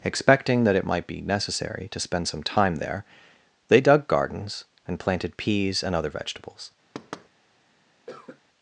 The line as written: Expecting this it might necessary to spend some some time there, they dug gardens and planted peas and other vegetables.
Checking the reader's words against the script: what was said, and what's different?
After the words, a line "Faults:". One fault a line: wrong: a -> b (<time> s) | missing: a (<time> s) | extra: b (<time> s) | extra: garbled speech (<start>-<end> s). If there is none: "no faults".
Expecting that it might be necessary to spend some time there, they dug gardens and planted peas and other vegetables.
Faults:
wrong: this -> that (0.6 s)
extra: be (1.1 s)
missing: some (2.4 s)